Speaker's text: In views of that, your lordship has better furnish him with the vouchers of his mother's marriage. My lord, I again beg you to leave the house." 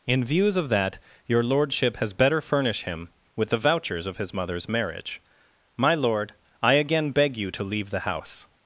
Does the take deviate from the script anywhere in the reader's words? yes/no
no